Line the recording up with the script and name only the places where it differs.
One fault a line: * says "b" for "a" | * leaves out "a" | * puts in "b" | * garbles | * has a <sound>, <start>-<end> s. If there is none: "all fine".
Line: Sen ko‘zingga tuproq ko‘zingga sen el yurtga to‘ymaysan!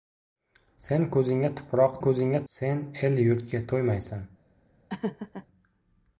* has a laugh, 4.9-5.5 s